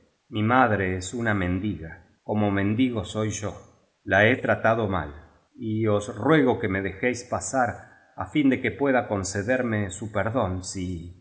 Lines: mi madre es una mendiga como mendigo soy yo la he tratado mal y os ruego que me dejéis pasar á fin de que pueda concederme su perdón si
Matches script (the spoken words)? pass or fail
pass